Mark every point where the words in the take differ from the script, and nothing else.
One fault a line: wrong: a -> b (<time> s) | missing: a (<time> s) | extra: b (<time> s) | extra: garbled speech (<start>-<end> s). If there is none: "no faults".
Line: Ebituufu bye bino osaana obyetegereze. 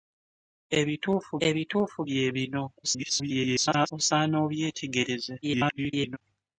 extra: ebituufu (1.5 s)
extra: garbled speech (2.8-3.9 s)
extra: garbled speech (5.4-6.2 s)